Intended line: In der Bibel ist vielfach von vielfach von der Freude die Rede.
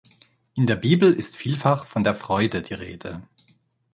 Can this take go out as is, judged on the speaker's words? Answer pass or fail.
fail